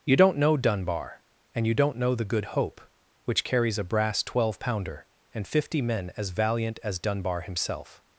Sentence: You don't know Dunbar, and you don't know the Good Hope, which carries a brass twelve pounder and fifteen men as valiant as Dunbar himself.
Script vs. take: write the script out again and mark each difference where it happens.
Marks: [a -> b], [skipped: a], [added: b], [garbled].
You don't know Dunbar, and you don't know the Good Hope, which carries a brass twelve pounder and [fifteen -> fifty] men as valiant as Dunbar himself.